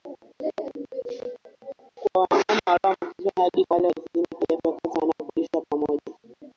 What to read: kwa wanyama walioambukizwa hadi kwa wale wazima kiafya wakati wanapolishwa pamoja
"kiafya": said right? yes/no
yes